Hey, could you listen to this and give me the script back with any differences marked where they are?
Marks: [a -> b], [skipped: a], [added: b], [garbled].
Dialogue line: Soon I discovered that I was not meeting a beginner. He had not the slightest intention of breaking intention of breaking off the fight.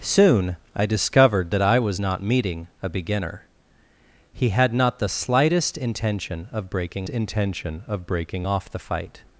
Soon I discovered that I was not meeting a beginner. He had not the slightest intention of breaking intention of breaking off the fight.